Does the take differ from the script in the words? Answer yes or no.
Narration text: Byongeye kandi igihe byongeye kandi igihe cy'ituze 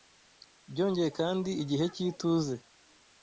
yes